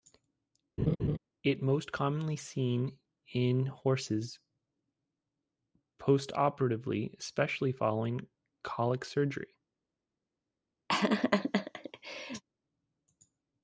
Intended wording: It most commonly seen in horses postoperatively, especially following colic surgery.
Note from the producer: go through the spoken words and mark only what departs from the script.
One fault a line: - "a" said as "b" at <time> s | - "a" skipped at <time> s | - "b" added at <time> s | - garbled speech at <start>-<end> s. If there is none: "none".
none